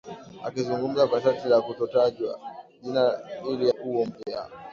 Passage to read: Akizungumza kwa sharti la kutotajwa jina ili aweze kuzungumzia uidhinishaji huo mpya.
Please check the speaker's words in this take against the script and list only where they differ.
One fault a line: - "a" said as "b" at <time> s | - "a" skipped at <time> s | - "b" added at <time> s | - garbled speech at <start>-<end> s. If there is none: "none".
- "aweze kuzungumzia uidhinishaji" skipped at 3.7 s